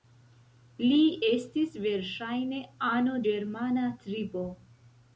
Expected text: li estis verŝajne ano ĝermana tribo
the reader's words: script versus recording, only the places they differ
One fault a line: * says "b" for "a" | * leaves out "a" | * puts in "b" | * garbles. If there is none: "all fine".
all fine